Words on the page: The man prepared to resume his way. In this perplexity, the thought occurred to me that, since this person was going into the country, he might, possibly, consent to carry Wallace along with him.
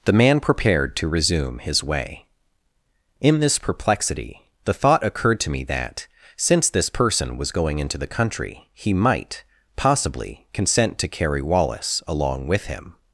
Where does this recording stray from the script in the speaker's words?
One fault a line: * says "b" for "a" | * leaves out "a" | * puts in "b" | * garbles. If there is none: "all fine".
all fine